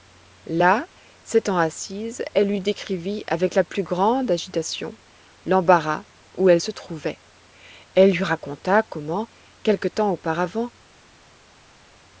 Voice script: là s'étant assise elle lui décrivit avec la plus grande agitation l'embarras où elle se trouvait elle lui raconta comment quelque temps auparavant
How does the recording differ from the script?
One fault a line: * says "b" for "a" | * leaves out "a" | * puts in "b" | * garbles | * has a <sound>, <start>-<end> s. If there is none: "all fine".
all fine